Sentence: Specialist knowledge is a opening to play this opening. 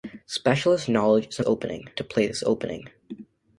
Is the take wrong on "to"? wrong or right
right